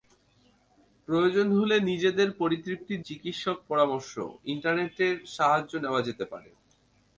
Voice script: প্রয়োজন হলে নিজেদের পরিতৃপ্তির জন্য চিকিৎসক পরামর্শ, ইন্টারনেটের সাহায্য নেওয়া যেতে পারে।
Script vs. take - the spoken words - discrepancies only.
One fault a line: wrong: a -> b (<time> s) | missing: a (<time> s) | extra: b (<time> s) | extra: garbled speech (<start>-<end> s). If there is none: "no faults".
missing: জন্য (3.0 s)